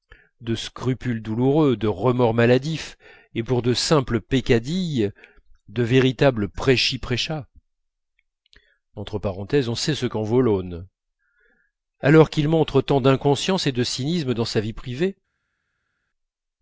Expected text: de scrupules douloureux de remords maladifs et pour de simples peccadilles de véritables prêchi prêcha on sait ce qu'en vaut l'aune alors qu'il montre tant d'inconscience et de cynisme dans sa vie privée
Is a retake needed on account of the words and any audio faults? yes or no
no